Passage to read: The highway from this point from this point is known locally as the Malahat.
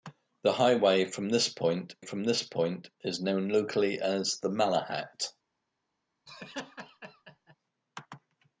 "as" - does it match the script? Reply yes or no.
yes